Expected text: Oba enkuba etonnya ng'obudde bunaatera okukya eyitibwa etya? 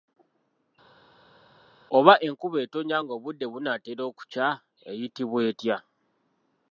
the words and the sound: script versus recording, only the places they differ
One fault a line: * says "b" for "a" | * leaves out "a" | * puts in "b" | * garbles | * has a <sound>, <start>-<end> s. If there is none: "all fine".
all fine